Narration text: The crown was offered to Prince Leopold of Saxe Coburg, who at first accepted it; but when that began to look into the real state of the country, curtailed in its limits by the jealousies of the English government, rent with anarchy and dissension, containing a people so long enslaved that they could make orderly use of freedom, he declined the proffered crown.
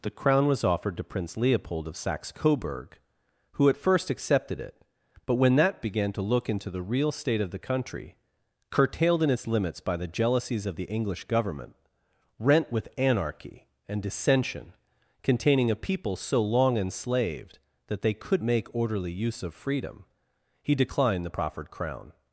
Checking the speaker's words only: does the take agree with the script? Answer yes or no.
yes